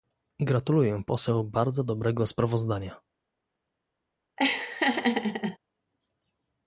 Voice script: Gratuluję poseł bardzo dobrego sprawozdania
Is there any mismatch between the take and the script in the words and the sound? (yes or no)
yes